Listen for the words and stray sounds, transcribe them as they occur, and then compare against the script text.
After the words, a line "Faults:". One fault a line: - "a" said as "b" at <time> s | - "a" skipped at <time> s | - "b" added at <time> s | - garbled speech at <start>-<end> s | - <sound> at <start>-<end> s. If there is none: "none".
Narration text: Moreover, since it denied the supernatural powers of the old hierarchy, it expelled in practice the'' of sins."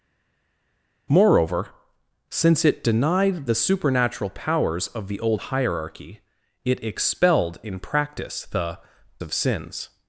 Moreover, since it denied the supernatural powers of the old hierarchy, it expelled in practice the'' of sins."
Faults:
none